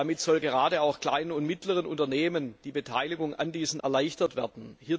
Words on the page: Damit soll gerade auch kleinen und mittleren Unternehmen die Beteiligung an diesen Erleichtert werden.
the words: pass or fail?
pass